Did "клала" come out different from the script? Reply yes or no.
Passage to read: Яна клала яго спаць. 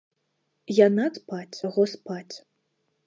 yes